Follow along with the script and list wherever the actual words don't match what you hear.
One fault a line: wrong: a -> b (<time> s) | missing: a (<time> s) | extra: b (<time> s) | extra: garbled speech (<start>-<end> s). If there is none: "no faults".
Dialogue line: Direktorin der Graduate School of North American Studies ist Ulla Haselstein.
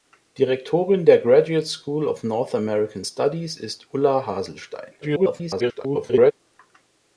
extra: garbled speech (5.0-6.3 s)